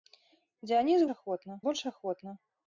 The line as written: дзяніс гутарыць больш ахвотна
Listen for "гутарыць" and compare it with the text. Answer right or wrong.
wrong